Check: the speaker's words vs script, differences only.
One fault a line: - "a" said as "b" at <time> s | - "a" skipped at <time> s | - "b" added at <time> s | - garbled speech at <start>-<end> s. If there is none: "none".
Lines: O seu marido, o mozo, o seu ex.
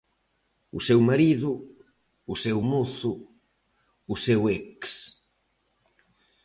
- "seu" added at 2.3 s